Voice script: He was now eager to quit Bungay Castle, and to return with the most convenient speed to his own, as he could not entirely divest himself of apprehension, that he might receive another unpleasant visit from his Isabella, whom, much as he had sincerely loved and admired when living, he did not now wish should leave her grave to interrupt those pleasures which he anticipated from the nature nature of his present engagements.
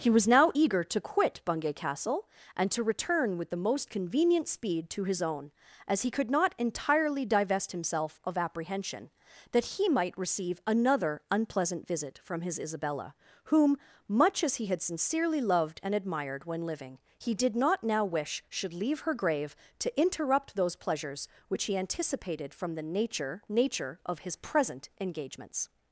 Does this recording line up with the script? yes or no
yes